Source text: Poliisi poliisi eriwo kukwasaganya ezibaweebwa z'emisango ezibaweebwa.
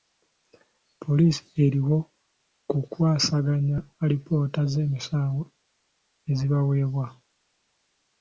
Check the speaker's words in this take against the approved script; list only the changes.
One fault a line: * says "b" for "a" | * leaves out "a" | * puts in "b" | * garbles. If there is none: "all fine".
* leaves out "poliisi"
* says "alipoota" for "ezibaweebwa"